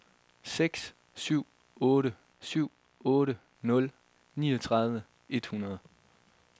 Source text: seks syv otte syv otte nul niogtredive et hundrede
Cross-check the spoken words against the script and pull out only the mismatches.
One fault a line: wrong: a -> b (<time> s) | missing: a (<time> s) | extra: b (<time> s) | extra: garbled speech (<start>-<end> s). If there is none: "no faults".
no faults